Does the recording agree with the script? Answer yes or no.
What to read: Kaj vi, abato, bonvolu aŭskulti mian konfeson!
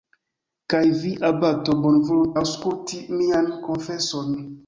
yes